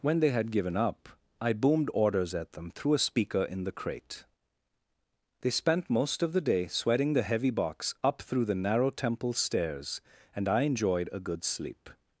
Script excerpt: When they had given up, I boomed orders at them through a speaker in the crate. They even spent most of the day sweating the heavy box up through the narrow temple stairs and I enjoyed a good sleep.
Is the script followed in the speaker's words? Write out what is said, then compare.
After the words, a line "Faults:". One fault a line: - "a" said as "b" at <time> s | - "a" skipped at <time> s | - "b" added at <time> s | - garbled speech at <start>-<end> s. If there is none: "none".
When they had given up, I boomed orders at them through a speaker in the crate. They spent most of the day sweating the heavy box up through the narrow temple stairs and I enjoyed a good sleep.
Faults:
- "even" skipped at 5.5 s